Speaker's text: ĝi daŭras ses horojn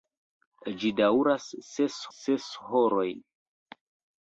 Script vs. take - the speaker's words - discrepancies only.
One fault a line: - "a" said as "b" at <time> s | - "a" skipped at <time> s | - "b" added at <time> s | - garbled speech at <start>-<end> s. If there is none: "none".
- "ses" added at 2.2 s